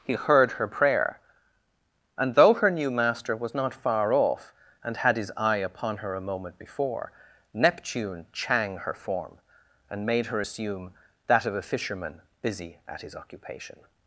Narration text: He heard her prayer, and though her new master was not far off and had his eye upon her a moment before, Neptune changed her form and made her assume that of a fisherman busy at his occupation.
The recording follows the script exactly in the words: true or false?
false